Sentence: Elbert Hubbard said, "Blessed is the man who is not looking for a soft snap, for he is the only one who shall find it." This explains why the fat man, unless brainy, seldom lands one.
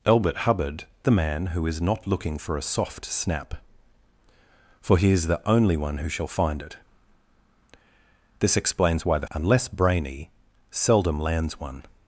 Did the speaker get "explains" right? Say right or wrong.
right